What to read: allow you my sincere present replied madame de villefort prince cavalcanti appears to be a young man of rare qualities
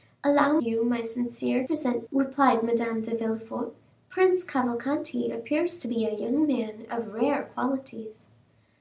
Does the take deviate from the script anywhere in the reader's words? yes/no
no